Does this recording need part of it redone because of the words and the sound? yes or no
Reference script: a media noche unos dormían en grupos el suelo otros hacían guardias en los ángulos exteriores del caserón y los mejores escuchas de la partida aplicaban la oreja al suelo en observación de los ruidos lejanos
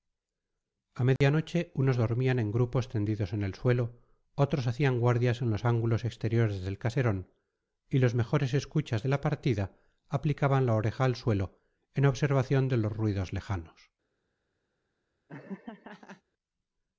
yes